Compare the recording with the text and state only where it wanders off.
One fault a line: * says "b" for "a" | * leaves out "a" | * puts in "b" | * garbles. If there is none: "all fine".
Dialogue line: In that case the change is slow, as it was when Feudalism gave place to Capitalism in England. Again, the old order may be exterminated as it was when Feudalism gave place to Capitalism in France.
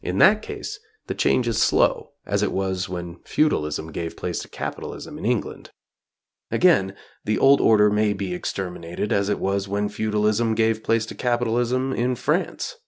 all fine